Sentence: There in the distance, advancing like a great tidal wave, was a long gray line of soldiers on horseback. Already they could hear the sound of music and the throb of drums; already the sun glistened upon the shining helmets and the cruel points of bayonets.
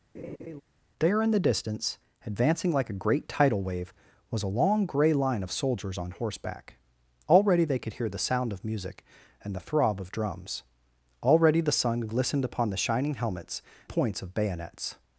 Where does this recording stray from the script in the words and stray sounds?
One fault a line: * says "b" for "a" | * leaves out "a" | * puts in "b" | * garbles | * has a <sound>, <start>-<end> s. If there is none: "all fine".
* has a laugh, 0.1-0.6 s
* leaves out "and the cruel"